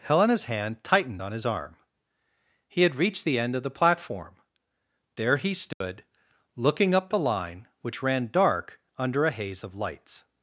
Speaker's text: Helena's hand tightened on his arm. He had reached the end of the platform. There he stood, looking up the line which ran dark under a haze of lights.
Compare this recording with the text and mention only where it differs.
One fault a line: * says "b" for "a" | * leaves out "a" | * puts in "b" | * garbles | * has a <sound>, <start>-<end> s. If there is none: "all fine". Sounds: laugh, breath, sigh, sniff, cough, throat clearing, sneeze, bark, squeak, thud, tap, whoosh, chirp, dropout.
* has a dropout, 5.7-5.8 s